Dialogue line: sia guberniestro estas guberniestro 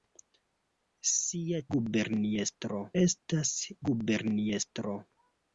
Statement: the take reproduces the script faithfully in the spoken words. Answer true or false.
true